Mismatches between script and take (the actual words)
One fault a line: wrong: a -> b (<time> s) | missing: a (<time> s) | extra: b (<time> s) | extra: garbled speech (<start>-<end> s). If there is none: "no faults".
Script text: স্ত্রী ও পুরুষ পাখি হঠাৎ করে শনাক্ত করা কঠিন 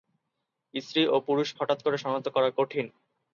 missing: পাখি (1.5 s)